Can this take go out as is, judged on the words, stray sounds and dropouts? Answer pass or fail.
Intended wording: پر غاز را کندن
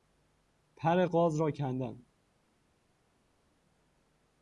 pass